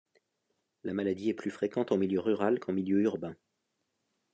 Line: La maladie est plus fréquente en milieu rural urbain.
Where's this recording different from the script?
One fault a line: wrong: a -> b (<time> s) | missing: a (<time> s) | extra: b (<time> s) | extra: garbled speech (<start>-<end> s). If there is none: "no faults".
extra: qu'en milieu (2.6 s)